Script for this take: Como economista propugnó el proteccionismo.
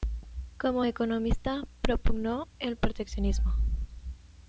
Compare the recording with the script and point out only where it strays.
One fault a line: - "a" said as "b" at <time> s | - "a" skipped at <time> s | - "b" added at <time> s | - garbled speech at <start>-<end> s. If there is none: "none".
none